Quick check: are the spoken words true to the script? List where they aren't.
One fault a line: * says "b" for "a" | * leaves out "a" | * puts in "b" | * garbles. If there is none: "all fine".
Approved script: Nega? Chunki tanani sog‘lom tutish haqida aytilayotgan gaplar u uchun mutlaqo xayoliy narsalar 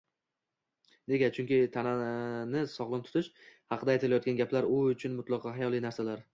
all fine